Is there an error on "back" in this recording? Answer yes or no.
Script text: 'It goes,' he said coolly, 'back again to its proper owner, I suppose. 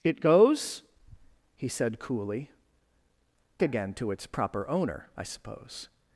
yes